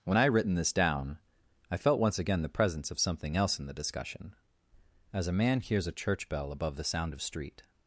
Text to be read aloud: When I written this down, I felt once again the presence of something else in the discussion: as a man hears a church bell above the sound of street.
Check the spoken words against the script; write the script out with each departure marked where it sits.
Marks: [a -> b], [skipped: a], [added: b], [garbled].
When I written this down, I felt once again the presence of something else in the discussion: as a man hears a church bell above the sound of street.